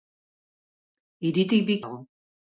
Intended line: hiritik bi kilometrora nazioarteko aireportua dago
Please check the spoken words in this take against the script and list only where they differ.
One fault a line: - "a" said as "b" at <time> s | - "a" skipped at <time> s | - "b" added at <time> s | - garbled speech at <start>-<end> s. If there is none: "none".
- "kilometrora nazioarteko aireportua" skipped at 1.8 s